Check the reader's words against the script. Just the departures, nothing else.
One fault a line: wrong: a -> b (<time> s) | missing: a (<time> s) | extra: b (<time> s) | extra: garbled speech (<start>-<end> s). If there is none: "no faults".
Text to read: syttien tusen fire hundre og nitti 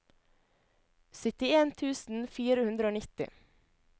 no faults